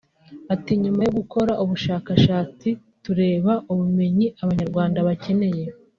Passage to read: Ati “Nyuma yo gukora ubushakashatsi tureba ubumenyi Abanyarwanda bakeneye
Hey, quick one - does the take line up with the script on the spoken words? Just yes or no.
yes